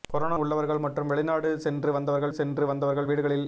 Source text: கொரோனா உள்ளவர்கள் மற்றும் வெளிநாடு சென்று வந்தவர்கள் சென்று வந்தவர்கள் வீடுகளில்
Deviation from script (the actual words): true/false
false